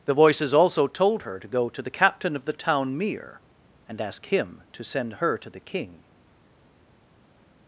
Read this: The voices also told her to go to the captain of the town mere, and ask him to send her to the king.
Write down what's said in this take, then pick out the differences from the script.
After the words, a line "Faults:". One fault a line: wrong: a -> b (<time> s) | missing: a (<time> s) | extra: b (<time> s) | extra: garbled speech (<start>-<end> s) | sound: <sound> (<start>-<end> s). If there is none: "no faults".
The voices also told her to go to the captain of the town mere, and ask him to send her to the king.
Faults:
no faults